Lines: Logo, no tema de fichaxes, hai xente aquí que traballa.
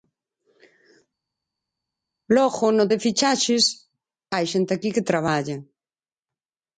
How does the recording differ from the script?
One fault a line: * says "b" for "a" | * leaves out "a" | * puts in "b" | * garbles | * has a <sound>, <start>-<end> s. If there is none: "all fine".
* leaves out "tema"